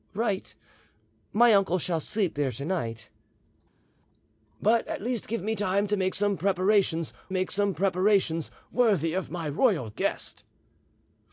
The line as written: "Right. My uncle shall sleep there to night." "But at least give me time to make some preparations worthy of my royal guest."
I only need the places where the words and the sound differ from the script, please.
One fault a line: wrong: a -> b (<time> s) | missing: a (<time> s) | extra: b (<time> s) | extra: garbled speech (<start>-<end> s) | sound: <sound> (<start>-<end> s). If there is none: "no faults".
extra: make some preparations (7.3 s)